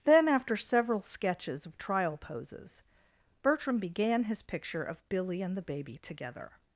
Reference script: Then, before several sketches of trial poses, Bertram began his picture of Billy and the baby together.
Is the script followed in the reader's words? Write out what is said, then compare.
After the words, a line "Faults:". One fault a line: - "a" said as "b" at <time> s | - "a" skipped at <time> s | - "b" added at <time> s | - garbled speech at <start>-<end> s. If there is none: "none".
Then, after several sketches of trial poses, Bertram began his picture of Billy and the baby together.
Faults:
- "before" said as "after" at 0.3 s